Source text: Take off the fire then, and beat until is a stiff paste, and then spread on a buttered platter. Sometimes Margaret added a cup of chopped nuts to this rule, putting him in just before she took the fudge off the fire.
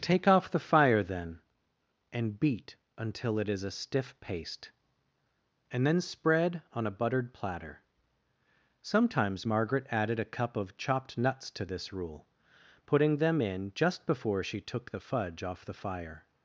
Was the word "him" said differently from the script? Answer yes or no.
yes